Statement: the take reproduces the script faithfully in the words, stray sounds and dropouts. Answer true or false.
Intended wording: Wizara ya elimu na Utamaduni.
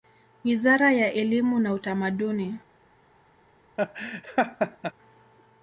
false